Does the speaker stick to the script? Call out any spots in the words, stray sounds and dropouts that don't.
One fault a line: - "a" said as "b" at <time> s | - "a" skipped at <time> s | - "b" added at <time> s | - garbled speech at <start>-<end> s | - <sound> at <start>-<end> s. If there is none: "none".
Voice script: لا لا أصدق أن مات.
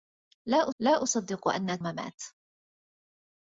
none